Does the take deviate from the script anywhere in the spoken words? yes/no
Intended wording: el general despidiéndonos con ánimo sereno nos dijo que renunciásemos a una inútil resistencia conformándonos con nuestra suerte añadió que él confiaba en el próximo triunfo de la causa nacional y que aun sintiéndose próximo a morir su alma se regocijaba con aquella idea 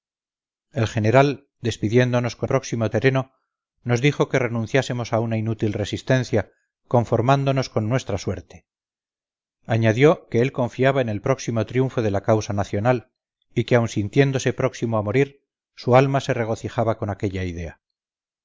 yes